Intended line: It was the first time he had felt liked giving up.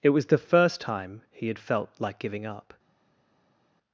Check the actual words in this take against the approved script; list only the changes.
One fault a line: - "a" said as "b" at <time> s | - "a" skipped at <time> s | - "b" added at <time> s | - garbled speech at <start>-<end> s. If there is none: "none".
- "liked" said as "like" at 2.0 s